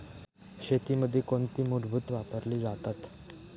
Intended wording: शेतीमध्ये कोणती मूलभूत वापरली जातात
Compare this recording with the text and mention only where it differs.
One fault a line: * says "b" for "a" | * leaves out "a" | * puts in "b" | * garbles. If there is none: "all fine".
all fine